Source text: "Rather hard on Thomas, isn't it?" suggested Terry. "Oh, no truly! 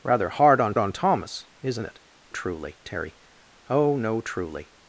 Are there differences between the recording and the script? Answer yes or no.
yes